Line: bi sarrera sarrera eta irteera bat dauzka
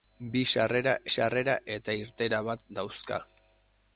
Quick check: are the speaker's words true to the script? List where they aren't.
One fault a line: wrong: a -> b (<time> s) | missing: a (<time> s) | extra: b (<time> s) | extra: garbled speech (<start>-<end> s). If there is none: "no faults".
no faults